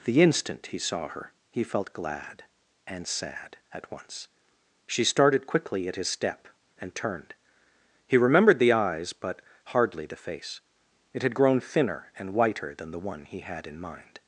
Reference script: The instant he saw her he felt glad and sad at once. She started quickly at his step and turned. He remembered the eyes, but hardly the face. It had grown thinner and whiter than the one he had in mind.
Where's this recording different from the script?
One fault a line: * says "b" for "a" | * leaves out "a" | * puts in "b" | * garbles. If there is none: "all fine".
all fine